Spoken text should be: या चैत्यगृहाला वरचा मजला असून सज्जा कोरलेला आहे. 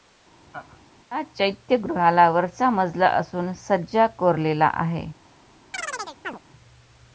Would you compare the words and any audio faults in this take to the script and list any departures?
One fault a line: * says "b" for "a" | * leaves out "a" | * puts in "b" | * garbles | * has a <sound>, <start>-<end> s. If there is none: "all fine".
* has a laugh, 0.5-0.9 s
* has a chirp, 5.7-6.4 s